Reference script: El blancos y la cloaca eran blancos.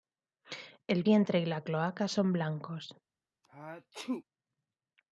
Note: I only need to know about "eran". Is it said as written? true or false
false